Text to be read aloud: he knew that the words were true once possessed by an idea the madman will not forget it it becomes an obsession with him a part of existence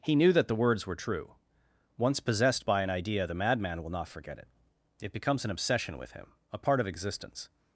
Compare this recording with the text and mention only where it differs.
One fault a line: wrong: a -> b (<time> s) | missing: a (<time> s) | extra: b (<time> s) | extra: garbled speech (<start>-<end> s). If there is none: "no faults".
no faults